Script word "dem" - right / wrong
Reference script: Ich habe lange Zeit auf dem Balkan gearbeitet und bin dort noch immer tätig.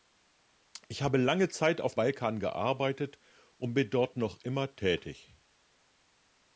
wrong